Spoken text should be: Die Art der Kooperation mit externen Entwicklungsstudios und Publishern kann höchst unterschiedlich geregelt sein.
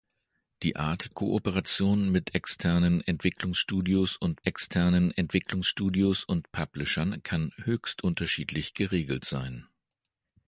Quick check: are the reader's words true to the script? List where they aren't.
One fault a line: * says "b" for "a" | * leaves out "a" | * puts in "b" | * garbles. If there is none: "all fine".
* leaves out "der"
* puts in "externen Entwicklungsstudios und"